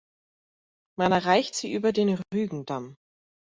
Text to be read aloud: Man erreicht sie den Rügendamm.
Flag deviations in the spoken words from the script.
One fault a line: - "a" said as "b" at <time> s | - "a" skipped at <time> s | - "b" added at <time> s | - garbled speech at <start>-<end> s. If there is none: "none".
- "über" added at 1.7 s